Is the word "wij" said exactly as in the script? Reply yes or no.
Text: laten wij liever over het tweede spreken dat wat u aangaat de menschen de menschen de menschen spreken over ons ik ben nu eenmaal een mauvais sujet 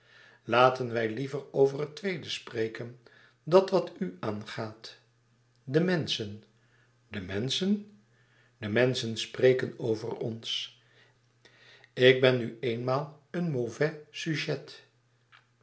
yes